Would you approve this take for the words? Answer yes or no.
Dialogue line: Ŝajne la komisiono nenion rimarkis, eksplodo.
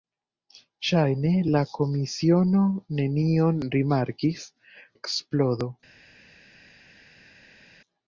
yes